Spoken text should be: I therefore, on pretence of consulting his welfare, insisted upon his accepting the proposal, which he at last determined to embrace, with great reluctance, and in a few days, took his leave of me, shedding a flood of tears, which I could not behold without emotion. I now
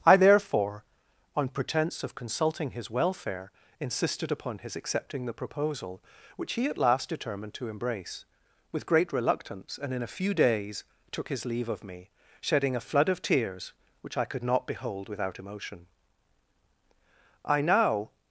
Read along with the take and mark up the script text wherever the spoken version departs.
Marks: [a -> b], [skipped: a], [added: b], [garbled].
I therefore, on pretence of consulting his welfare, insisted upon his accepting the proposal, which he at last determined to embrace, with great reluctance, and in a few days, took his leave of me, shedding a flood of tears, which I could not behold without emotion. I now